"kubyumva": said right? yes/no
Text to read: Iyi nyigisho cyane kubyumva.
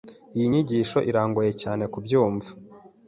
yes